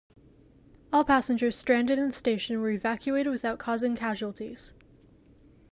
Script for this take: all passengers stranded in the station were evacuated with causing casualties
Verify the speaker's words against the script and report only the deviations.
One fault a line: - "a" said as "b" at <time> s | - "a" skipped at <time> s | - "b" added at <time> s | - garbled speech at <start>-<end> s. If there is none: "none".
- "with" said as "without" at 3.3 s